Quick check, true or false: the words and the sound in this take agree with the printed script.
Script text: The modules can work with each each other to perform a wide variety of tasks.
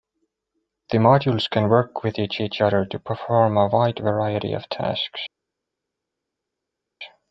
true